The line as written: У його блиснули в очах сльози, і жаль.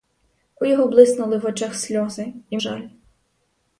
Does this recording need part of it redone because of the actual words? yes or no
no